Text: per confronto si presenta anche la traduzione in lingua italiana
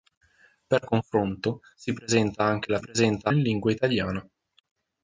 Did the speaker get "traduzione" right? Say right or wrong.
wrong